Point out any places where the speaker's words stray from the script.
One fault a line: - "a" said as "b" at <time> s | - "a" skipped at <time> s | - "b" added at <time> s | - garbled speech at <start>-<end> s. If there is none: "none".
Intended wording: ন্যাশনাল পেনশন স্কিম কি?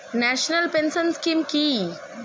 none